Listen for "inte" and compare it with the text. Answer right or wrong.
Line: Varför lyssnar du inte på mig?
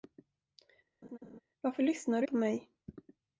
wrong